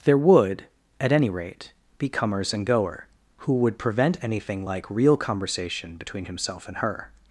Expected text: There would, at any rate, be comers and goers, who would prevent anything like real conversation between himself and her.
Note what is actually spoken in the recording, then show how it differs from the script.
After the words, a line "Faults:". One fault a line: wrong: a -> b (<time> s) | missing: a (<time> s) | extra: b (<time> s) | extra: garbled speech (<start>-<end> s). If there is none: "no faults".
There would, at any rate, be comers and goer, who would prevent anything like real conversation between himself and her.
Faults:
wrong: goers -> goer (2.6 s)